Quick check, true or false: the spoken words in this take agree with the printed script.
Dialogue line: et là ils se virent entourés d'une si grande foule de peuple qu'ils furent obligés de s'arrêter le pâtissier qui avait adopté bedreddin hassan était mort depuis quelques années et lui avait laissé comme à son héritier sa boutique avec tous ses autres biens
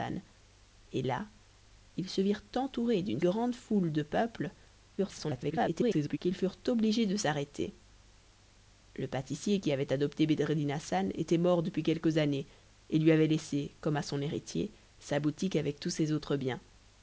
false